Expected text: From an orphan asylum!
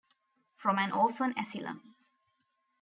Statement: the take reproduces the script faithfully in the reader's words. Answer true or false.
true